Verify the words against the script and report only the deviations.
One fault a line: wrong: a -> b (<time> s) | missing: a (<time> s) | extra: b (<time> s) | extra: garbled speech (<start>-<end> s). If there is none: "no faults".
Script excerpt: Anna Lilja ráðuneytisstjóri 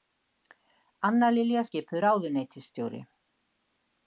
extra: skipuð (1.7 s)